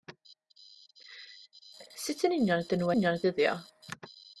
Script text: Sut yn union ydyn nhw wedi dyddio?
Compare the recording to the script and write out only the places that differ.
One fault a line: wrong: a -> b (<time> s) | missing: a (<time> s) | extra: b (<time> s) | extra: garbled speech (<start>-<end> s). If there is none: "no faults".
wrong: wedi -> union (2.9 s)